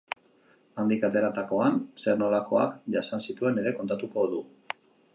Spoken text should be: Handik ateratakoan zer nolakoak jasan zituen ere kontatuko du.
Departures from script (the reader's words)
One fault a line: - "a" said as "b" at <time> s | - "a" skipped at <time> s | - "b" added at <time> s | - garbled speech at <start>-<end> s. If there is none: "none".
none